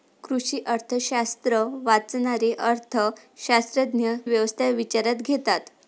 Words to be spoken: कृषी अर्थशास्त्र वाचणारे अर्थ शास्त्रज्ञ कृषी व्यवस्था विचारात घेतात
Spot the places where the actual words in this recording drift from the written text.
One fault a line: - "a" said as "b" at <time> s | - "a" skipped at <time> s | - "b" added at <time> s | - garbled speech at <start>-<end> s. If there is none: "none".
- "कृषी" skipped at 4.2 s